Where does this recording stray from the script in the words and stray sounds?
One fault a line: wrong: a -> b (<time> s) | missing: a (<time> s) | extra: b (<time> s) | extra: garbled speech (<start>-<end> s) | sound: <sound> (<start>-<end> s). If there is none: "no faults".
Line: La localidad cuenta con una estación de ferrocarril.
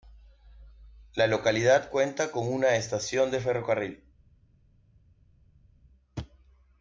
no faults